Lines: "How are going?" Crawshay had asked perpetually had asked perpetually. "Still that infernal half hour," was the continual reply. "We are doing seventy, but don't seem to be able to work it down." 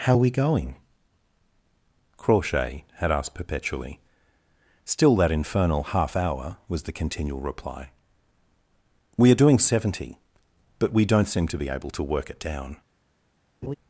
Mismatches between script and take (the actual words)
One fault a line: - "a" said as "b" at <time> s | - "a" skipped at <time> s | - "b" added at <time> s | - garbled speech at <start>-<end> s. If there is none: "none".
- "we" added at 0.2 s
- "had asked perpetually" skipped at 4.0 s
- "we" added at 10.9 s